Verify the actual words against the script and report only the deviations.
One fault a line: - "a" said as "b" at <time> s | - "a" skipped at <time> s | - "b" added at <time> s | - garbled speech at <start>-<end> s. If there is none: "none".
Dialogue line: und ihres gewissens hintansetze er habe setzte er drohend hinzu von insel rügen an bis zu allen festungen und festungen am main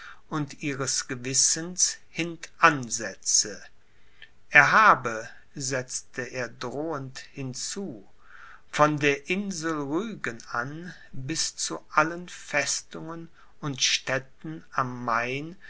- "der" added at 9.0 s
- "festungen" said as "städten" at 13.8 s